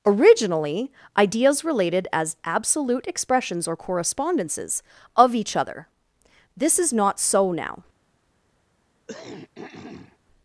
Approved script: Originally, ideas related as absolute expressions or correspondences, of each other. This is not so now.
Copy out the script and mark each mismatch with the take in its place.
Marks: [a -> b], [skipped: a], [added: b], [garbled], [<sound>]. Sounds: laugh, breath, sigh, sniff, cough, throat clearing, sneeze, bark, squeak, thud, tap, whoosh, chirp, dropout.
Originally, ideas related as absolute expressions or correspondences, of each other. This is not so now. [throat clearing]